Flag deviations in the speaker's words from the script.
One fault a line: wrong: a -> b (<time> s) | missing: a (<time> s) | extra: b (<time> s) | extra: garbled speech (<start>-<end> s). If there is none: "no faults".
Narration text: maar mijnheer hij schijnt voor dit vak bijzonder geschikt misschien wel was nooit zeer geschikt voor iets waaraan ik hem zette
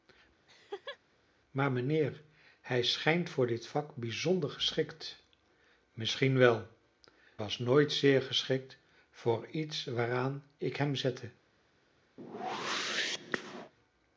no faults